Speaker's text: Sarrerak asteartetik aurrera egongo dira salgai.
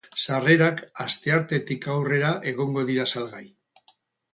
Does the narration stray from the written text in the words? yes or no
no